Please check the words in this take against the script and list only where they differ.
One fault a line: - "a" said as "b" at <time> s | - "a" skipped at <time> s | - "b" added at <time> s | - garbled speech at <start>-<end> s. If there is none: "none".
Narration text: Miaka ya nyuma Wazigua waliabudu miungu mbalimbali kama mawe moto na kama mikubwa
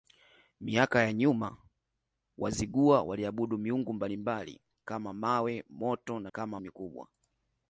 none